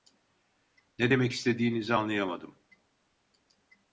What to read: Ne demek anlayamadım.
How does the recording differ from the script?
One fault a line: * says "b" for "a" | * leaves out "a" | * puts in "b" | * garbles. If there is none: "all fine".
* puts in "istediğinizi"